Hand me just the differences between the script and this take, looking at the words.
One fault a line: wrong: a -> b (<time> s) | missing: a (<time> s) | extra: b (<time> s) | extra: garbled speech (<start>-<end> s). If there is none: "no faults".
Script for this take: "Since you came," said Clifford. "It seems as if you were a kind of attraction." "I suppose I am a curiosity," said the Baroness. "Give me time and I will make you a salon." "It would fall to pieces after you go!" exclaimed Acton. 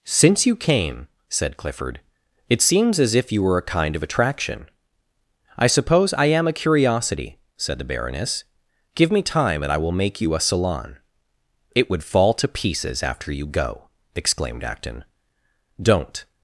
extra: Don't (15.8 s)